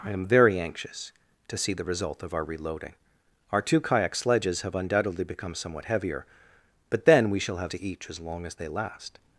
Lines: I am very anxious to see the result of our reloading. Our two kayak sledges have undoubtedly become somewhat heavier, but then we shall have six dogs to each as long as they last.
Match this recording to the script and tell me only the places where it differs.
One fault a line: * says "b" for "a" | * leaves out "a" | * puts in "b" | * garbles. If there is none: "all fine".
* leaves out "six dogs"